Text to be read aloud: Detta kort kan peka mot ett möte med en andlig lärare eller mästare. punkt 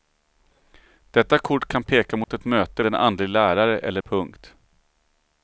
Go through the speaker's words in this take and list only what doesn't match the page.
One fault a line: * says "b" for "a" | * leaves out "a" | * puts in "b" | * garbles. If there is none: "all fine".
* leaves out "med"
* leaves out "mästare"